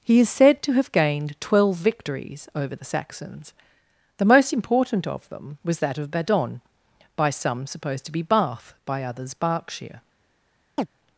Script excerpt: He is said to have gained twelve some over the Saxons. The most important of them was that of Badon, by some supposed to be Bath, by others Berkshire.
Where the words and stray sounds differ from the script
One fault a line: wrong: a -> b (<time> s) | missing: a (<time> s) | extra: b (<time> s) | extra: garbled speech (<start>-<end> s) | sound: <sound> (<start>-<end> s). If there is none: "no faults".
wrong: some -> victories (1.8 s)
sound: chirp (10.8-10.9 s)